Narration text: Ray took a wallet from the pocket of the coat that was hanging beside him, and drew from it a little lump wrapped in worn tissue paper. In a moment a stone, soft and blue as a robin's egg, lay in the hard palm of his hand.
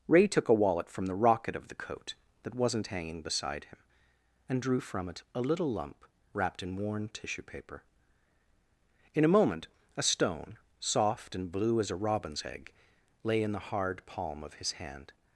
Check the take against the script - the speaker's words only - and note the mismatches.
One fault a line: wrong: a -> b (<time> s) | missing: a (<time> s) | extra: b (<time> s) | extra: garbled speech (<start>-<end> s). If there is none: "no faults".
wrong: pocket -> rocket (1.1 s)
wrong: was -> wasn't (2.5 s)